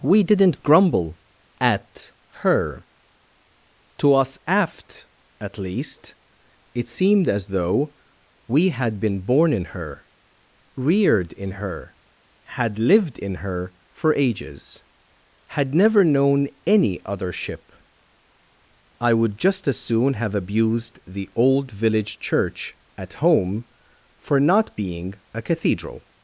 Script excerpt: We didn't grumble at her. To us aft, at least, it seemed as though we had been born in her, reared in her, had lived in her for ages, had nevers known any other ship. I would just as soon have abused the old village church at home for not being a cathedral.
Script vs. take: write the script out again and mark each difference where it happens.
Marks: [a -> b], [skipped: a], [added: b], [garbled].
We didn't grumble at her. To us aft, at least, it seemed as though we had been born in her, reared in her, had lived in her for ages, had [nevers -> never] known any other ship. I would just as soon have abused the old village church at home for not being a cathedral.